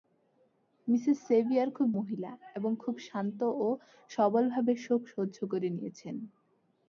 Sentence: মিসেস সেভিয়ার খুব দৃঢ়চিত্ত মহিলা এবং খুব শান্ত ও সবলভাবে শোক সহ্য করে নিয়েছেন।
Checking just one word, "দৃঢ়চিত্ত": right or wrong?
wrong